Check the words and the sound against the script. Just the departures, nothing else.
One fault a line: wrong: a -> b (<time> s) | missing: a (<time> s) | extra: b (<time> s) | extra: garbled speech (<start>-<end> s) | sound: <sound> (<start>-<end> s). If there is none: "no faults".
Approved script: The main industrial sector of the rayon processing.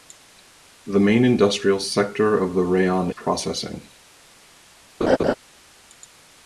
sound: laugh (5.0-5.3 s)